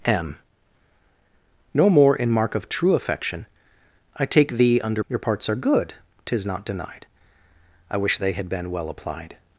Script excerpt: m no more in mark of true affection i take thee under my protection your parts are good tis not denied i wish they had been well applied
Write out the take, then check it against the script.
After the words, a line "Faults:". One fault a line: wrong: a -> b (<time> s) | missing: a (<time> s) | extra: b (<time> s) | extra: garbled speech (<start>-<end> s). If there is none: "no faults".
m no more in mark of true affection i take thee under your parts are good tis not denied i wish they had been well applied
Faults:
missing: my protection (5.0 s)